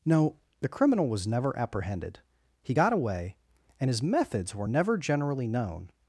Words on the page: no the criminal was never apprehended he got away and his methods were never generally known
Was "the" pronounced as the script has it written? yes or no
yes